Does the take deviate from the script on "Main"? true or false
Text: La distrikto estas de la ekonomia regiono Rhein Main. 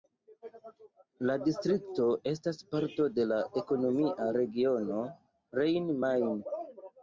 false